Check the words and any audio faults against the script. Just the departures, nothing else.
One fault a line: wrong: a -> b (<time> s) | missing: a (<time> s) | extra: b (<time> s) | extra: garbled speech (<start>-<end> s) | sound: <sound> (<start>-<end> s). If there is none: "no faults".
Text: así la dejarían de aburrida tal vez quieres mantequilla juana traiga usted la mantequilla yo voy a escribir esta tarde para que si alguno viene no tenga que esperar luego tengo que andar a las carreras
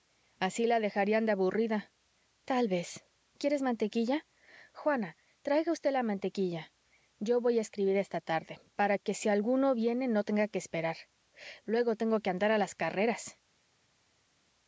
no faults